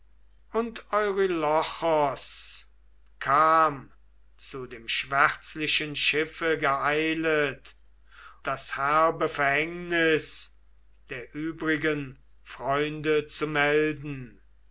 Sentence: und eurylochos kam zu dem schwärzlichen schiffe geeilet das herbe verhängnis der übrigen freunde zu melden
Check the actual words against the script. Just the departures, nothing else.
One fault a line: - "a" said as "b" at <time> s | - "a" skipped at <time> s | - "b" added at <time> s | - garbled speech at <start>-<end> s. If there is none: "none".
none